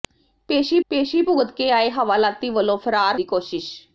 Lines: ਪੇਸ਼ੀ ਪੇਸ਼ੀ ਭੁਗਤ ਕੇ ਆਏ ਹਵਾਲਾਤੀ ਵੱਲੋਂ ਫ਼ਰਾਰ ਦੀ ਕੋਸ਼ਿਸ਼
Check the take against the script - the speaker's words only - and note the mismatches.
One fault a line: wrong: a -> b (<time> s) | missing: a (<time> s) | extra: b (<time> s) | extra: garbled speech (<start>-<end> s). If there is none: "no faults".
no faults